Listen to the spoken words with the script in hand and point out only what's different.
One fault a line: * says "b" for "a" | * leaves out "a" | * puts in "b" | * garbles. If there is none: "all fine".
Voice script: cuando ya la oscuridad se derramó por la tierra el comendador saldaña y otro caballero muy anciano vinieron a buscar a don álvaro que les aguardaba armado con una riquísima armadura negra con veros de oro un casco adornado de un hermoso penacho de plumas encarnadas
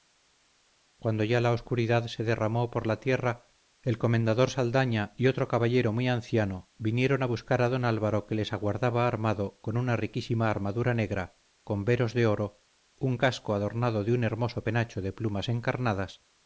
all fine